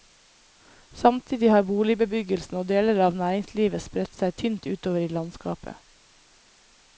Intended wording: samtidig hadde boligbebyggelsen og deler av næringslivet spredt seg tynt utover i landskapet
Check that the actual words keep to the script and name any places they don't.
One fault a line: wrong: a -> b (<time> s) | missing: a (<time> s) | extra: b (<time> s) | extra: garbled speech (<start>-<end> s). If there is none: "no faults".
wrong: hadde -> har (1.5 s)